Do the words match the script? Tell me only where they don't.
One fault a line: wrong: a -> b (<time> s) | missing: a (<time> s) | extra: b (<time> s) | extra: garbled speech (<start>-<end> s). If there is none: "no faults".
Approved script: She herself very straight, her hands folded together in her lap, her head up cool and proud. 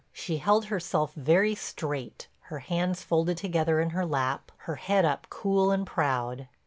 extra: held (0.4 s)